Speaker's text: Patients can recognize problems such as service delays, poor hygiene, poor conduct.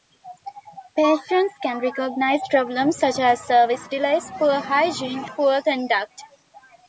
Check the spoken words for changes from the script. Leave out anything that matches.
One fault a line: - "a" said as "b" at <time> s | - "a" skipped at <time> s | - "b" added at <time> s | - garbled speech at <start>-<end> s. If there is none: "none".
none